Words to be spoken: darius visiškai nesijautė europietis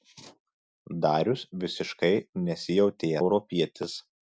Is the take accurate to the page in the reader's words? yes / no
yes